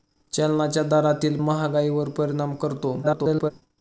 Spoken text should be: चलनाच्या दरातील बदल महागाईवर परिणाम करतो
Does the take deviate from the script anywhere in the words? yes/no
yes